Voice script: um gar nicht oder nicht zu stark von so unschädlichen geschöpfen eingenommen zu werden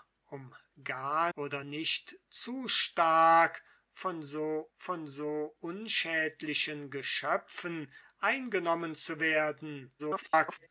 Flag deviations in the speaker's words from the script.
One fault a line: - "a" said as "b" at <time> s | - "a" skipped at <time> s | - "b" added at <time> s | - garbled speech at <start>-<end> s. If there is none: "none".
- "nicht" skipped at 1.3 s
- "von so" added at 4.7 s
- garbled speech at 10.0-10.7 s